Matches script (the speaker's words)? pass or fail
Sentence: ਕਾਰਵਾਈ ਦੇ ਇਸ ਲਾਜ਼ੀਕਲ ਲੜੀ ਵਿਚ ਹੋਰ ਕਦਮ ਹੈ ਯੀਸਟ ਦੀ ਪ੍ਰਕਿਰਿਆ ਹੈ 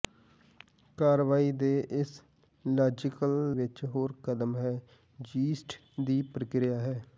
fail